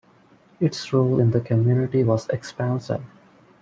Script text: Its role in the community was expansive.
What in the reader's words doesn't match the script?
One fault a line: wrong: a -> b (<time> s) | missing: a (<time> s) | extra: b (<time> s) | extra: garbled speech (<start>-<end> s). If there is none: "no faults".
no faults